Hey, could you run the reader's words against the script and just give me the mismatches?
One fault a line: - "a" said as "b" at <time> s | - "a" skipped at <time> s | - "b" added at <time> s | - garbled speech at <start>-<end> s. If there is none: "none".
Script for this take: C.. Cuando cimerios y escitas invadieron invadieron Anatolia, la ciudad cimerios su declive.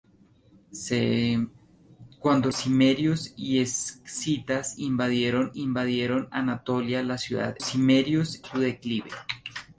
none